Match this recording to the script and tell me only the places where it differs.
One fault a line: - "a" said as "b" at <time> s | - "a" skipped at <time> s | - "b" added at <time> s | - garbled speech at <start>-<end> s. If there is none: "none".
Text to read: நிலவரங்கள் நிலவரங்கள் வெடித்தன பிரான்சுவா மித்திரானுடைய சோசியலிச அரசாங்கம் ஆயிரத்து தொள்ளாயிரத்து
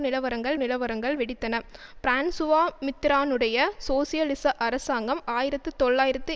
none